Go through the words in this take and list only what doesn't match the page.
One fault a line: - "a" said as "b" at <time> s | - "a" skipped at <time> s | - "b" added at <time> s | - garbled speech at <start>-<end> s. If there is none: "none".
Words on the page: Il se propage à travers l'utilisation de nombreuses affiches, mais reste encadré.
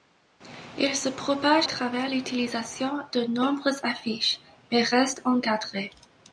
- "à" skipped at 1.7 s